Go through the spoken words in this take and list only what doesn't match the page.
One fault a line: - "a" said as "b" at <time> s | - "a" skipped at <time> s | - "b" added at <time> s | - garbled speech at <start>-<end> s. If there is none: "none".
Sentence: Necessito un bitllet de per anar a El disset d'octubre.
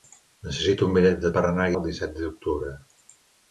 none